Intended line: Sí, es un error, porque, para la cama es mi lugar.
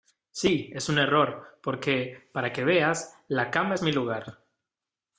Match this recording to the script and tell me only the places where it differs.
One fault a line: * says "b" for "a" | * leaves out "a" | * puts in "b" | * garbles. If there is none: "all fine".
* puts in "que veas"